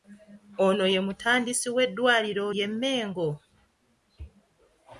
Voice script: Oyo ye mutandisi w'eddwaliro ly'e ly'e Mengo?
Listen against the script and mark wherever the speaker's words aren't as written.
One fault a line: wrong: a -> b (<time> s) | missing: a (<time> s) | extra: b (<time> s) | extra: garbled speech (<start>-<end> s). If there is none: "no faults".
wrong: Oyo -> Ono (0.7 s)
missing: ly'e (2.7 s)